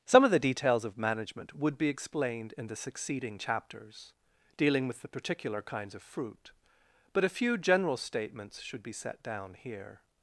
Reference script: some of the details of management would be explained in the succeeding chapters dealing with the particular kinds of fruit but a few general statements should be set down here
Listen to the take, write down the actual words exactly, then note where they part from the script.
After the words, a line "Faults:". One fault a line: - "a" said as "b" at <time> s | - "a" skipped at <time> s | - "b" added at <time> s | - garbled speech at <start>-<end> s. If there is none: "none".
some of the details of management would be explained in the succeeding chapters dealing with the particular kinds of fruit but a few general statements should be set down here
Faults:
none